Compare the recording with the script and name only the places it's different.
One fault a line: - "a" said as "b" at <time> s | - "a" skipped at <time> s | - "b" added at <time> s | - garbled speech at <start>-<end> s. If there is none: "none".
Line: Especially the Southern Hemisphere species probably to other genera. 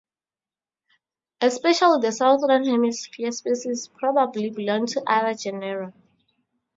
- "belong" added at 4.5 s